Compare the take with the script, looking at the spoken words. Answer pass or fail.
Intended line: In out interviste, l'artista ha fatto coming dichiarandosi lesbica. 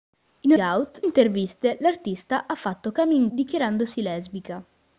pass